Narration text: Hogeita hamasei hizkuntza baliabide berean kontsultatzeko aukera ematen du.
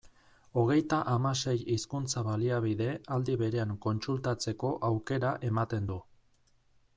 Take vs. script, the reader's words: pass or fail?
fail